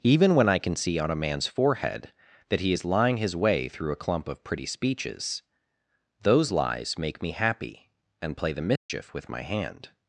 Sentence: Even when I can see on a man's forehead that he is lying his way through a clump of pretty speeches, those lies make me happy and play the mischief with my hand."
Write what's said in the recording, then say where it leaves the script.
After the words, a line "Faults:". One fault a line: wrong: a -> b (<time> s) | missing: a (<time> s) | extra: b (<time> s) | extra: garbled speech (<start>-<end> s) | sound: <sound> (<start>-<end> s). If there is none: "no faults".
Even when I can see on a man's forehead that he is lying his way through a clump of pretty speeches, those lies make me happy and play the mischief with my hand."
Faults:
sound: dropout (8.8-8.9 s)